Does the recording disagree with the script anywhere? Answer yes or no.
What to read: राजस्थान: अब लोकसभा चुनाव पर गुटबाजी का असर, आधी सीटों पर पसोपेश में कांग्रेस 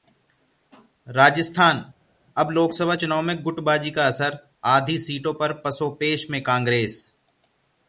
yes